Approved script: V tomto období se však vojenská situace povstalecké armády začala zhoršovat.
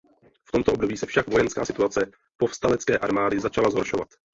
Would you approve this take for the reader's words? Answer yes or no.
yes